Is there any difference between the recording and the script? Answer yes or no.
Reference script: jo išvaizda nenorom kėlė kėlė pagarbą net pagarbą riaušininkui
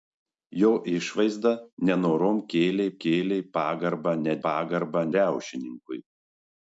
no